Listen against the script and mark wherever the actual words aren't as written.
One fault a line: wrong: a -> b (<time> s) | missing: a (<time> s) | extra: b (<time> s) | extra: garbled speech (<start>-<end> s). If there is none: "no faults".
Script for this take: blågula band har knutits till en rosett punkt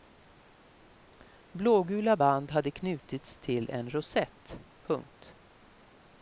wrong: har -> hade (2.5 s)